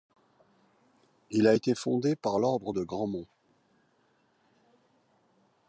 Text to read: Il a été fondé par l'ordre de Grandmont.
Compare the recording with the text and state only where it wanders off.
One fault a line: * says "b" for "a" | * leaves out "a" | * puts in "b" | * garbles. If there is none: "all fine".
all fine